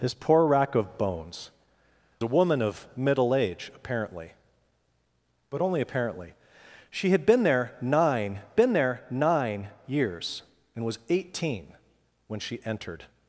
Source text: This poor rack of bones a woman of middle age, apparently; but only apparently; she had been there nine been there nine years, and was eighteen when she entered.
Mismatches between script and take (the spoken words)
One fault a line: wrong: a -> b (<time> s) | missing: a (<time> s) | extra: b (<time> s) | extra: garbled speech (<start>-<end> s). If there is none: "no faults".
no faults